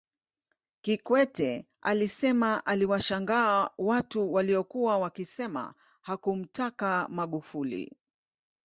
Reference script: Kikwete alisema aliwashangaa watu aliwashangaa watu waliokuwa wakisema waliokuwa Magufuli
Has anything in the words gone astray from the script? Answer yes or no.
yes